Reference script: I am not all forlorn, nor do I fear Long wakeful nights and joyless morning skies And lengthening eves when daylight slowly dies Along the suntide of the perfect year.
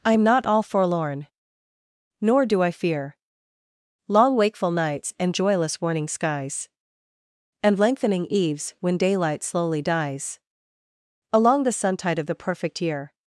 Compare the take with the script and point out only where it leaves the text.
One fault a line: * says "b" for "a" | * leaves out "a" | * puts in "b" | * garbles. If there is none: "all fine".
* says "warning" for "morning"